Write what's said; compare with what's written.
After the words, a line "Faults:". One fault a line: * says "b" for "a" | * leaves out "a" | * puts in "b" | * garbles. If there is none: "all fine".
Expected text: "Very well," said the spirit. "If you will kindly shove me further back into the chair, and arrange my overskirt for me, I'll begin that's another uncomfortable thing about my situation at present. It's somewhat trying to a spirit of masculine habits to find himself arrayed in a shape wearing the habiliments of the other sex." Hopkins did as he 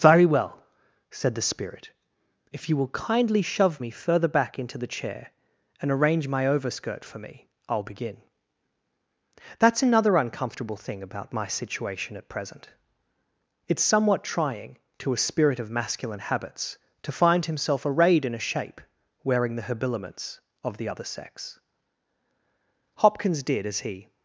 "Very well," said the spirit. "If you will kindly shove me further back into the chair, and arrange my overskirt for me, I'll begin that's another uncomfortable thing about my situation at present. It's somewhat trying to a spirit of masculine habits to find himself arrayed in a shape wearing the habiliments of the other sex." Hopkins did as he
Faults:
all fine